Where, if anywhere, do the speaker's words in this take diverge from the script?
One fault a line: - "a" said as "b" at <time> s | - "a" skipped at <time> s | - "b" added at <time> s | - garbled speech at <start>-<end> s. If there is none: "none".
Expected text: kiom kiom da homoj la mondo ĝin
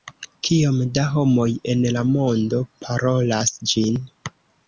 - "kiom" skipped at 0.8 s
- "en" added at 1.7 s
- "parolas" added at 2.9 s